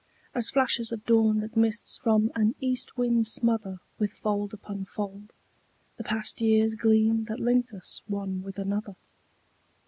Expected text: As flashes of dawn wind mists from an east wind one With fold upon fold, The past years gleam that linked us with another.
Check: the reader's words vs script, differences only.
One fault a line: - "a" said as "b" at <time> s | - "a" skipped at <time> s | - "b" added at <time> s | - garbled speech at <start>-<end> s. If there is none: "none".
- "wind" said as "that" at 1.4 s
- "one" said as "smother" at 3.3 s
- "one" added at 8.1 s